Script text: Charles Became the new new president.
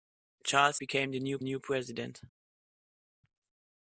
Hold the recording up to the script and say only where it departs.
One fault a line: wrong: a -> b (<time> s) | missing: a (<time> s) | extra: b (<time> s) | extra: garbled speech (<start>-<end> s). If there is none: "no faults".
no faults